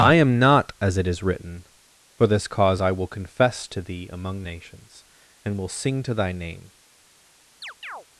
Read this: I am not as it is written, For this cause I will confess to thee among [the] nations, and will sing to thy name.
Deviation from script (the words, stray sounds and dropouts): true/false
true